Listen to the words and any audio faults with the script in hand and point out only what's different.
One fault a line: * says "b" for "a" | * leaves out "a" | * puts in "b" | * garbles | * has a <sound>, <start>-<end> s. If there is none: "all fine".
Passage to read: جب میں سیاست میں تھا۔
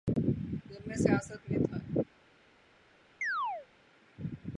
* has a chirp, 3.2-3.7 s